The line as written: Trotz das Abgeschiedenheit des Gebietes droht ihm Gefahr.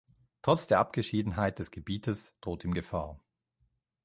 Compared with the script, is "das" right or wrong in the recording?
wrong